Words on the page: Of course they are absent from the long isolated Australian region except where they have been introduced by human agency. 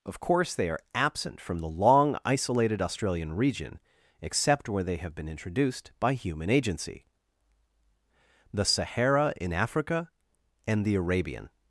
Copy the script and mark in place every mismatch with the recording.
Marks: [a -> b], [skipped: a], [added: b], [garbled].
Of course they are absent from the long isolated Australian region except where they have been introduced by human agency. [added: The Sahara in Africa and the Arabian]